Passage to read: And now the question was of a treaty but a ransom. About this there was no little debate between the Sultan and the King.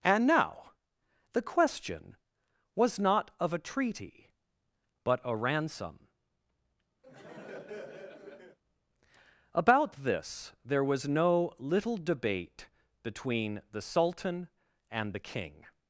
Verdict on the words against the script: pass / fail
fail